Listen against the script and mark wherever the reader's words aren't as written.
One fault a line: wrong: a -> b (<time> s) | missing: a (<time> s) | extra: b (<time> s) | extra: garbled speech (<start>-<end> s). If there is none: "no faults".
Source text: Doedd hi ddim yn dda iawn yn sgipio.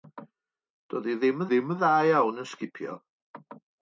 extra: ddim (1.5 s)